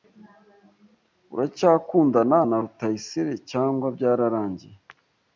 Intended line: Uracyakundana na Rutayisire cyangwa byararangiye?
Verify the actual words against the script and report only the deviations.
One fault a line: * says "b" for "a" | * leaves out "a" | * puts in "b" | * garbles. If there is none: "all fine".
all fine